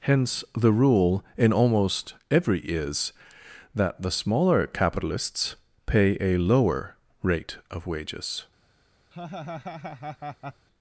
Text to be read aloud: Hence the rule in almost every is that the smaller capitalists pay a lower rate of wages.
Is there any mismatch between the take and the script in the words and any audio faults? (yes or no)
yes